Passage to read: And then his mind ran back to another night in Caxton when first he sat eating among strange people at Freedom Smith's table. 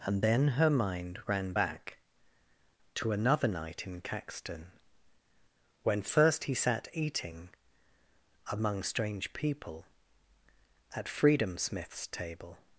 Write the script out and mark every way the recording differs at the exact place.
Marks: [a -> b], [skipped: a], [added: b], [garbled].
And then [his -> her] mind ran back to another night in Caxton when first he sat eating among strange people at Freedom Smith's table.